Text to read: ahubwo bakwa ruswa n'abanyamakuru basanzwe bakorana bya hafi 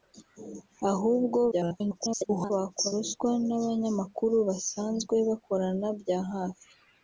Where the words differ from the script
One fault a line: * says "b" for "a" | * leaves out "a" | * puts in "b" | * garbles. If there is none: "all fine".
* garbles